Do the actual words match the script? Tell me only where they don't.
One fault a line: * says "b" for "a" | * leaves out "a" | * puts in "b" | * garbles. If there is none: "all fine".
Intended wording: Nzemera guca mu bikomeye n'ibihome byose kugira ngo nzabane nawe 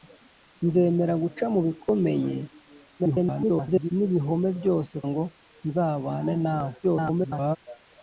* garbles
* leaves out "kugira"
* garbles